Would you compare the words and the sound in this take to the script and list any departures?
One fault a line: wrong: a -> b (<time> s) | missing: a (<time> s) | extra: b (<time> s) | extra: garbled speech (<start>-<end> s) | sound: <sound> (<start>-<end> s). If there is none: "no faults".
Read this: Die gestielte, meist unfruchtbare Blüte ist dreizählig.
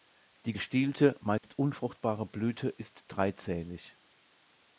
sound: dropout (1.4-1.4 s)